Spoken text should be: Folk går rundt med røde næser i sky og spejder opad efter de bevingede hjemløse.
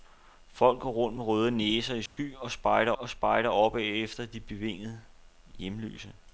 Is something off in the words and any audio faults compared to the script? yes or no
yes